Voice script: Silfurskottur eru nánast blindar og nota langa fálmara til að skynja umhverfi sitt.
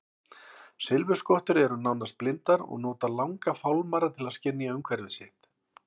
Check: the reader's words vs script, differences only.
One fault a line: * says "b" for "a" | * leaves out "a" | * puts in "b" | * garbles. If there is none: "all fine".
all fine